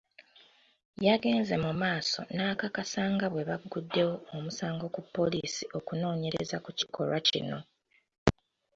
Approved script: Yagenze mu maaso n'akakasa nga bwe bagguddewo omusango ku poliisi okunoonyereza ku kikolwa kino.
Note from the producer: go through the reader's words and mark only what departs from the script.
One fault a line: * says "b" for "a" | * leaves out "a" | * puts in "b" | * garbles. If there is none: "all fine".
all fine